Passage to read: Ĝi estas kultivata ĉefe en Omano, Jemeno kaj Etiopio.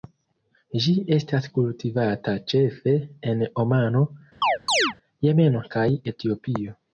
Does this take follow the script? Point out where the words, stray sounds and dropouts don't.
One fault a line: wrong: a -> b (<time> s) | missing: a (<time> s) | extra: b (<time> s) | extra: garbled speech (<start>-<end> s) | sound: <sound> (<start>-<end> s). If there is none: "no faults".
sound: chirp (4.4-4.9 s)